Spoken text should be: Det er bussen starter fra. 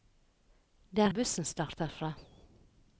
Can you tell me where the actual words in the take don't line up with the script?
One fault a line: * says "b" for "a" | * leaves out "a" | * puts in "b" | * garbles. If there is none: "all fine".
all fine